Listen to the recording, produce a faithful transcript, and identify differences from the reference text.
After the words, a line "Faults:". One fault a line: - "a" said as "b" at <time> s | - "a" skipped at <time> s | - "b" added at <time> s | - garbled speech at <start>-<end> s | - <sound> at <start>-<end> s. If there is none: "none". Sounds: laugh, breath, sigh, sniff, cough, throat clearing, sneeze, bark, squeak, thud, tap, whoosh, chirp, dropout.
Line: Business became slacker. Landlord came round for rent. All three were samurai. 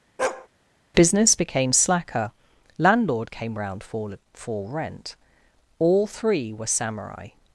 Business became slacker. Landlord came round for for rent. All three were samurai.
Faults:
- bark at 0.2-0.5 s
- "for" added at 4.3 s